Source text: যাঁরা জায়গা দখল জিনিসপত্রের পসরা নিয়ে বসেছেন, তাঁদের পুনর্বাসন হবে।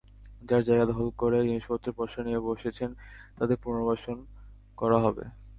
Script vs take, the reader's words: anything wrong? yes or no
yes